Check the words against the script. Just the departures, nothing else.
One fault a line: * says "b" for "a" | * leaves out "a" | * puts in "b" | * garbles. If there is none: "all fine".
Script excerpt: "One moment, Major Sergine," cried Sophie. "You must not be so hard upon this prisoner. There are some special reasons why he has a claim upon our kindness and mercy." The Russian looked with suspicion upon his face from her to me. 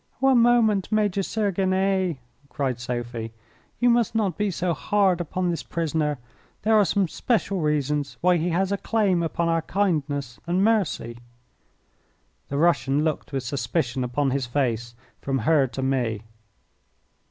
all fine